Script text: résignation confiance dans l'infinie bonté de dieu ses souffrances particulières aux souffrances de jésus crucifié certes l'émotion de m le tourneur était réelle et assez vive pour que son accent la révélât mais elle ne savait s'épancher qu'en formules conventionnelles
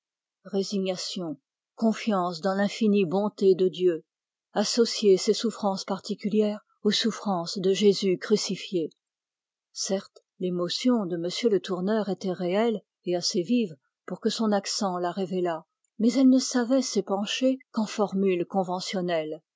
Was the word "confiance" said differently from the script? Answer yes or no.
no